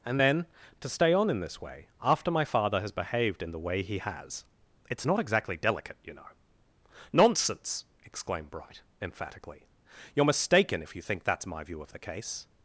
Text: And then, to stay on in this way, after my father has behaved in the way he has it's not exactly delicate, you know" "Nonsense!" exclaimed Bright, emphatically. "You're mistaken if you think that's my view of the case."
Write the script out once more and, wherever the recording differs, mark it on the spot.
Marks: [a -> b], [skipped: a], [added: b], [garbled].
And then, to stay on in this way, after my father has behaved in the way he has it's not exactly delicate, you know" "Nonsense!" exclaimed Bright, emphatically. "You're mistaken if you think that's my view of the case."